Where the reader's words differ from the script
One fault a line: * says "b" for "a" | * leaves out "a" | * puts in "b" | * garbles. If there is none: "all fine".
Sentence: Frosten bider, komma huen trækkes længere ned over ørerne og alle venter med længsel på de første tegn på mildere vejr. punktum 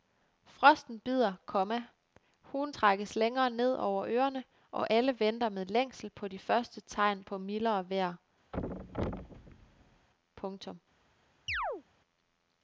all fine